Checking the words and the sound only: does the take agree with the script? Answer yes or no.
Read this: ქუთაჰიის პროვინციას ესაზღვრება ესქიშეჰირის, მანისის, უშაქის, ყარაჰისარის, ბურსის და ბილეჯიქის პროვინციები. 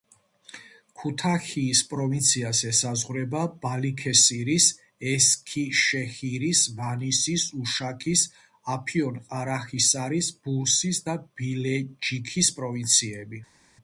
no